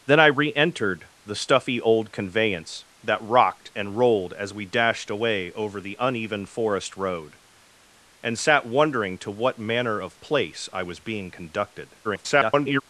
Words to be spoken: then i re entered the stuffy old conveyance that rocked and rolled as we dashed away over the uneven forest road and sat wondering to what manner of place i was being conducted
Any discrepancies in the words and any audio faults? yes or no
yes